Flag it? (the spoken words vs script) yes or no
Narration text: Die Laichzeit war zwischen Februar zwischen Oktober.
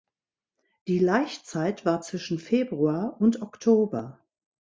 yes